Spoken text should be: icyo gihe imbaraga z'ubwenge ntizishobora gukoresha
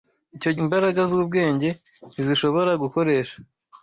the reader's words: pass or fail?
fail